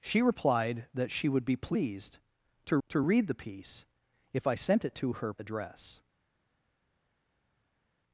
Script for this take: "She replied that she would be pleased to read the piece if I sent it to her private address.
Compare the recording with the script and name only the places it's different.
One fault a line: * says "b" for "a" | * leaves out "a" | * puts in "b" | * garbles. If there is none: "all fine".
* puts in "to"
* leaves out "private"